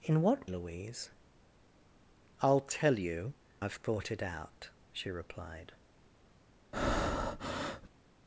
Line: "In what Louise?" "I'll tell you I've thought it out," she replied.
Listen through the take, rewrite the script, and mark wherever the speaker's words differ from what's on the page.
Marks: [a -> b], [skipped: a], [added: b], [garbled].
"In what Louise?" "I'll tell you I've thought it out," she replied.